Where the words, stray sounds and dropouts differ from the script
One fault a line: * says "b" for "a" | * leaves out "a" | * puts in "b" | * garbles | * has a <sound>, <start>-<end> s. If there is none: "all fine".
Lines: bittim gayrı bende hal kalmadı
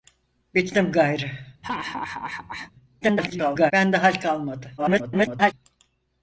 * has a laugh, 1.6-2.7 s
* garbles
* garbles